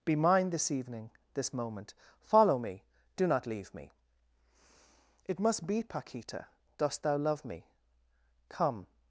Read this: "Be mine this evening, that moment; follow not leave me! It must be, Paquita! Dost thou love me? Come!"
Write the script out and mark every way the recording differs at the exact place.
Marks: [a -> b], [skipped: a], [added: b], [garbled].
"Be mine this evening, [that -> this] moment; follow [added: me do] not leave me! It must be, Paquita! Dost thou love me? Come!"